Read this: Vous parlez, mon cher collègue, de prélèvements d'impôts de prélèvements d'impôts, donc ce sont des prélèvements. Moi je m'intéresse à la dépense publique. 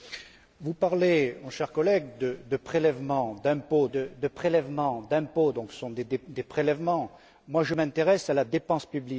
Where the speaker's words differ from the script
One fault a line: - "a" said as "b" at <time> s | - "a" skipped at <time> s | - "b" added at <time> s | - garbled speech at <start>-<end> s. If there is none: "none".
none